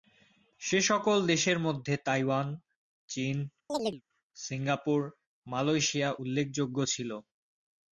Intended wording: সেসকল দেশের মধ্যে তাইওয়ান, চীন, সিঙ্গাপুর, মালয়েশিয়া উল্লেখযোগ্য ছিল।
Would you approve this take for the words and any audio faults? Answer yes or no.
no